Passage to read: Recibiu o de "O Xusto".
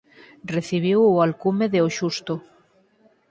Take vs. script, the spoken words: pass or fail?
fail